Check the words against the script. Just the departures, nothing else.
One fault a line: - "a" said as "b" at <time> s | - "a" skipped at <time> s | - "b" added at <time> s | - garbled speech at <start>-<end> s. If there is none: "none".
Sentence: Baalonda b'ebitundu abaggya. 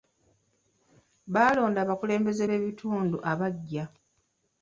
- "abakulembeze" added at 1.8 s